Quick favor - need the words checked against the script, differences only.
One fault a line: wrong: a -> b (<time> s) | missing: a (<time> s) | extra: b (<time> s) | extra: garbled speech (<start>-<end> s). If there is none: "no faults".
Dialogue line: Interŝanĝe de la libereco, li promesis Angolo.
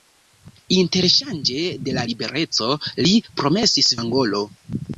no faults